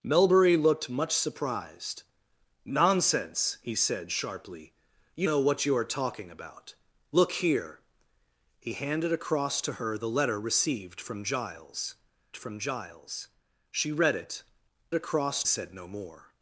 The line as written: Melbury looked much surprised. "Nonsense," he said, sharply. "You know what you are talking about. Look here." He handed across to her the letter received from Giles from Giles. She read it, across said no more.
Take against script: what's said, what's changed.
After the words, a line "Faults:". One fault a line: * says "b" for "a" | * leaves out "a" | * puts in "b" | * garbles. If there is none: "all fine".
Melbury looked much surprised. "Nonsense," he said, sharply. "You know what you are talking about. Look here." He handed across to her the letter received from Giles from Giles. She read it, across said no more.
Faults:
all fine